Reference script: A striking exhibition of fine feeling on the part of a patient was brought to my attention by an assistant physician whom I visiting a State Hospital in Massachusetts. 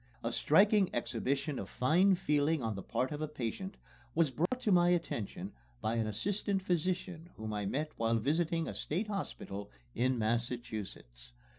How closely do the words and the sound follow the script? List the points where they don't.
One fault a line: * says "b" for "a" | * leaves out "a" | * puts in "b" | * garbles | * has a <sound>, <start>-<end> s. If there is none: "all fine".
* has a dropout, 4.5-4.5 s
* puts in "met while"